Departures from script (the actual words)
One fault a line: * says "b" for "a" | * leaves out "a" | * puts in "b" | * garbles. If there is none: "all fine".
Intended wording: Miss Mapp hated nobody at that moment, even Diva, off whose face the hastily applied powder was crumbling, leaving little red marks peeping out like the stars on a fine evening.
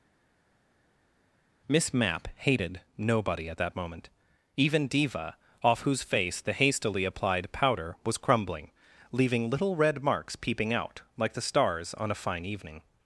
all fine